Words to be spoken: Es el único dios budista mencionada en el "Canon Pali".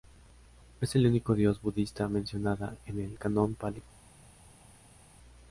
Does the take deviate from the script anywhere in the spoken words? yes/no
no